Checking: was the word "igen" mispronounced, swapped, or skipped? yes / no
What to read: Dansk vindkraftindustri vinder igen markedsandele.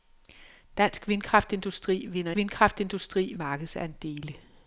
yes